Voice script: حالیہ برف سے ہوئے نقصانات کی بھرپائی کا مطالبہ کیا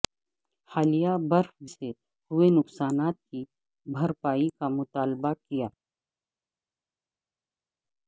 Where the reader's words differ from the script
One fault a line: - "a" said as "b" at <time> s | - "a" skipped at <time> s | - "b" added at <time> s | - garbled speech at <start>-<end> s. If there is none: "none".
none